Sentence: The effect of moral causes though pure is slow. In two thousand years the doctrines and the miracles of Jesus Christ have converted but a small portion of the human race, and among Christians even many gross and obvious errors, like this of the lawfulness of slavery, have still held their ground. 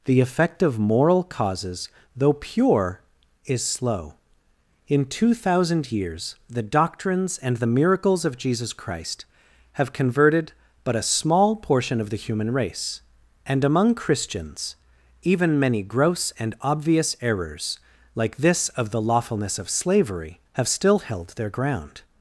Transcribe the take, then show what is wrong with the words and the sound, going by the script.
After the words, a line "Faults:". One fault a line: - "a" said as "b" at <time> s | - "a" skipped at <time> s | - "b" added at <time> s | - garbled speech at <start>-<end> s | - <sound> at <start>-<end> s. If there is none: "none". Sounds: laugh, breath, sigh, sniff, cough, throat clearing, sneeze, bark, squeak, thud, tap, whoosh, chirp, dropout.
The effect of moral causes though pure is slow. In two thousand years the doctrines and the miracles of Jesus Christ have converted but a small portion of the human race, and among Christians even many gross and obvious errors, like this of the lawfulness of slavery, have still held their ground.
Faults:
none